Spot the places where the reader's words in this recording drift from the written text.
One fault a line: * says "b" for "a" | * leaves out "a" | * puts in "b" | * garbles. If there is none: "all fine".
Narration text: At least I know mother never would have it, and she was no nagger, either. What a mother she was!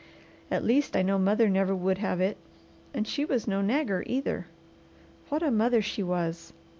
all fine